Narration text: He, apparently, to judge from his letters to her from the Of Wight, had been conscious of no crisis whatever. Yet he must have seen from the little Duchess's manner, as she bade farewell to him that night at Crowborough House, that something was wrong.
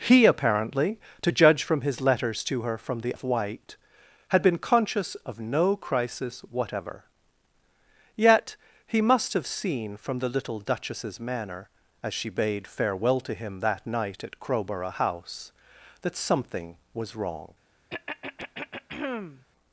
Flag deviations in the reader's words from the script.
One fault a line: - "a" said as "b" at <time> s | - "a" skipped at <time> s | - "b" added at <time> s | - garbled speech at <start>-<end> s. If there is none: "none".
none